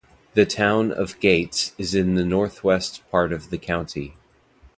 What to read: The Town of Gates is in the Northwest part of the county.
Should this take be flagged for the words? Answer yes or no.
no